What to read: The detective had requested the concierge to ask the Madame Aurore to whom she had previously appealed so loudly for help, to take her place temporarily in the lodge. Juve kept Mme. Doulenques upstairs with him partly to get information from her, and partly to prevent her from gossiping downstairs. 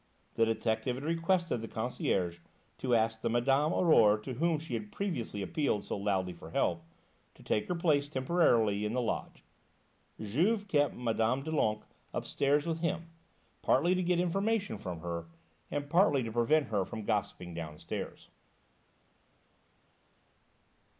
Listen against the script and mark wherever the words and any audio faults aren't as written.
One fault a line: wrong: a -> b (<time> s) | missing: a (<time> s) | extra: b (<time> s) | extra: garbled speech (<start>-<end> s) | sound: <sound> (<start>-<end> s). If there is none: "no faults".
no faults